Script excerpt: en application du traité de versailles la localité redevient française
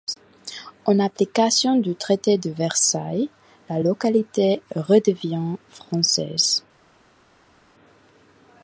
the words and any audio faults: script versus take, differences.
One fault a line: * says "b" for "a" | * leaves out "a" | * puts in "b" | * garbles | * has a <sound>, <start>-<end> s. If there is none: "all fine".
all fine